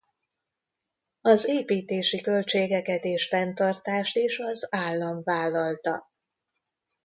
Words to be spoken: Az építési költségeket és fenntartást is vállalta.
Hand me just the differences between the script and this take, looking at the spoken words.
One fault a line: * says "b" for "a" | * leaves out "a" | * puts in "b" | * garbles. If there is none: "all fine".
* puts in "az állam"